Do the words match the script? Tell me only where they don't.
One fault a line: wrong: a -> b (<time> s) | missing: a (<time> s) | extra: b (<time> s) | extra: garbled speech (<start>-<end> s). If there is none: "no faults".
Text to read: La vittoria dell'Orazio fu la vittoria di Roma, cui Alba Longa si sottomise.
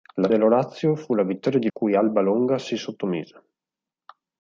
missing: vittoria (0.3 s)
missing: Roma (1.7 s)